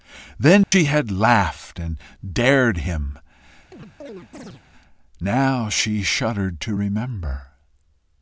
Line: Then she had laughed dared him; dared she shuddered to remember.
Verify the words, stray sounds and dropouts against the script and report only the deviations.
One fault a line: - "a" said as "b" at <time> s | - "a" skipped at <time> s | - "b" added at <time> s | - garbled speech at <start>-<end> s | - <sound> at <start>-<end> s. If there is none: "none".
- dropout at 0.6-0.7 s
- "and" added at 1.8 s
- chirp at 3.7-4.6 s
- "dared" said as "now" at 5.2 s